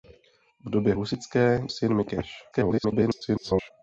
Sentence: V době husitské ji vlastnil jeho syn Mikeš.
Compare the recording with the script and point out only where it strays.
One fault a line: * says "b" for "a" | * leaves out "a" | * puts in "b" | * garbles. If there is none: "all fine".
* leaves out "ji vlastnil jeho"
* garbles